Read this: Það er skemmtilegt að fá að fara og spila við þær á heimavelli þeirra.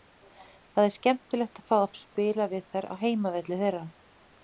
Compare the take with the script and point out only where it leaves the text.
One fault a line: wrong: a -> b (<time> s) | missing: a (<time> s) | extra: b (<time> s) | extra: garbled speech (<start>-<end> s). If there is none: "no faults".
missing: fara (2.0 s)